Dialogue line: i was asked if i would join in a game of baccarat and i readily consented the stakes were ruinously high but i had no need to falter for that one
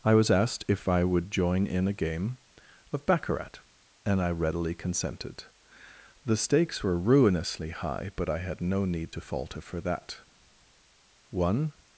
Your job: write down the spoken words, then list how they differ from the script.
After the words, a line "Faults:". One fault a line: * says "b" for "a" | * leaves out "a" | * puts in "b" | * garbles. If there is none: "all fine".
i was asked if i would join in a game of baccarat and i readily consented the stakes were ruinously high but i had no need to falter for that one
Faults:
all fine